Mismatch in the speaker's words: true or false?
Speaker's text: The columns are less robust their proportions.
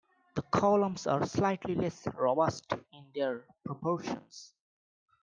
true